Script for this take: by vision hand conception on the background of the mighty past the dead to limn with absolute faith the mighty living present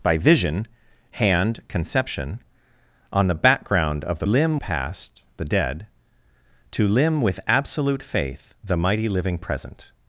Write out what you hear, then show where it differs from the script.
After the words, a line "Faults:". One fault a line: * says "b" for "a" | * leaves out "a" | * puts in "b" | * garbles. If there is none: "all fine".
by vision hand conception on the background of the limn past the dead to limn with absolute faith the mighty living present
Faults:
* says "limn" for "mighty"